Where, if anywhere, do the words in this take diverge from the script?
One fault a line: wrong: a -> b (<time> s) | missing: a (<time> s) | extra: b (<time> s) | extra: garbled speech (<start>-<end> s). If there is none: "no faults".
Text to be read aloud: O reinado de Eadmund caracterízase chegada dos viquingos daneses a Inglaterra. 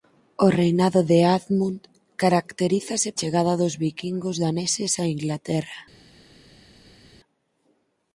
no faults